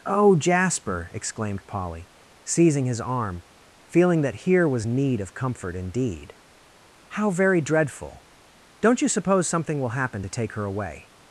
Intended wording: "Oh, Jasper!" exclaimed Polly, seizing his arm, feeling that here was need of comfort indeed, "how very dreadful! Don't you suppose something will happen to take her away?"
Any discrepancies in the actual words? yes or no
no